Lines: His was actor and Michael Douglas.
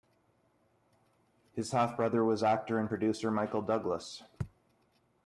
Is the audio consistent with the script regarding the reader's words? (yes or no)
no